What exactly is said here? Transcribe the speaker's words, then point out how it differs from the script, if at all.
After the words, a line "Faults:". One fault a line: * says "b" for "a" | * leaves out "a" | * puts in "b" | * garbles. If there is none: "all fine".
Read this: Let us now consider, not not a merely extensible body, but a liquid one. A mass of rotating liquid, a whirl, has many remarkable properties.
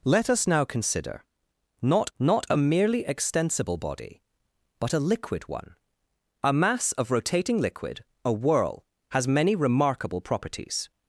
Let us now consider, not not a merely extensible body, but a liquid one. A mass of rotating liquid, a whirl, has many remarkable properties.
Faults:
all fine